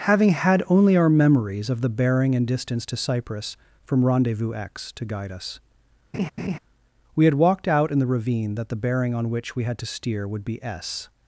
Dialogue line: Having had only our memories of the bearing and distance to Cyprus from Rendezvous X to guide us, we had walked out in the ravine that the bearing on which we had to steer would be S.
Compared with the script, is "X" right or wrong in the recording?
right